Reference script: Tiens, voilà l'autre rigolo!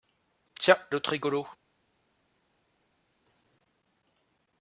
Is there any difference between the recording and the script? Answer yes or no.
yes